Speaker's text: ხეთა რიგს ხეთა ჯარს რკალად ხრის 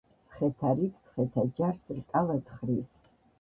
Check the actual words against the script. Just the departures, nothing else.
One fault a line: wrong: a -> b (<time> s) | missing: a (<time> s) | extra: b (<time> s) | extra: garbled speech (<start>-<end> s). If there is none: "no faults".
no faults